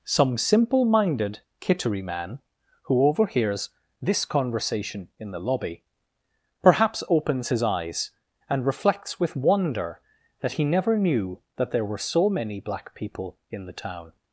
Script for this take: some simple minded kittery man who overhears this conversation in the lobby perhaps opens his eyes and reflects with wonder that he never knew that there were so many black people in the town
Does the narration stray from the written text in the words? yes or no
no